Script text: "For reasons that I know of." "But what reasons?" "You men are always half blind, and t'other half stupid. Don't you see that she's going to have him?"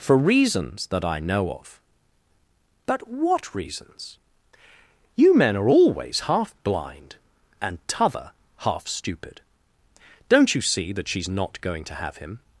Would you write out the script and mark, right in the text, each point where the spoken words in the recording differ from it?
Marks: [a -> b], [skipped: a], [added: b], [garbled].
"For reasons that I know of." "But what reasons?" "You men are always half blind, and t'other half stupid. Don't you see that she's [added: not] going to have him?"